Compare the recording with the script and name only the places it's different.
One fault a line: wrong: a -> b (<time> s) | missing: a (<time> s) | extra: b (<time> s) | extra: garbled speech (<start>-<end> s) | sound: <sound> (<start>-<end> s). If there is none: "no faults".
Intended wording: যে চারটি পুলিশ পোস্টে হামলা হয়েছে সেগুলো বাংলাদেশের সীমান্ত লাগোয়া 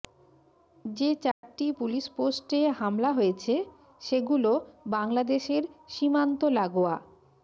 sound: dropout (1.3-1.4 s)